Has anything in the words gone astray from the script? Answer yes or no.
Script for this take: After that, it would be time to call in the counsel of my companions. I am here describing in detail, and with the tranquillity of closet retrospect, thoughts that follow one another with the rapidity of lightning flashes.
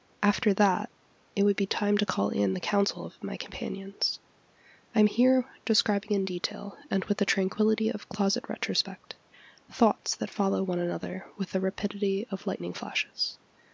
no